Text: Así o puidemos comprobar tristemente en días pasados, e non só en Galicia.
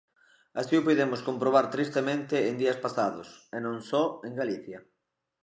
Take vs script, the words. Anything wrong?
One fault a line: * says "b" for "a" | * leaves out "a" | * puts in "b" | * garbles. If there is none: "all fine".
all fine